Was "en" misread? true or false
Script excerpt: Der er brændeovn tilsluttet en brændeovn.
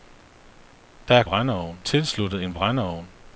false